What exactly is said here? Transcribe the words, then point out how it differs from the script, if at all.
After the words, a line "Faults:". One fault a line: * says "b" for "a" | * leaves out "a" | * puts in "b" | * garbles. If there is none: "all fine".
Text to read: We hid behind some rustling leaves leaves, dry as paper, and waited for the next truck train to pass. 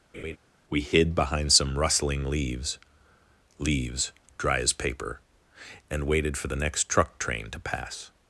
We hid behind some rustling leaves leaves, dry as paper, and waited for the next truck train to pass.
Faults:
all fine